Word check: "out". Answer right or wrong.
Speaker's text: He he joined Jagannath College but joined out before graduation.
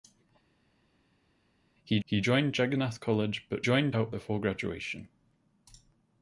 right